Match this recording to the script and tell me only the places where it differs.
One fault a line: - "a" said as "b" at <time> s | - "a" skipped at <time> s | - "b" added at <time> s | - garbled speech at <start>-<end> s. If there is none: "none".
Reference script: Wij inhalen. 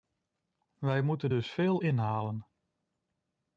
- "moeten dus veel" added at 1.0 s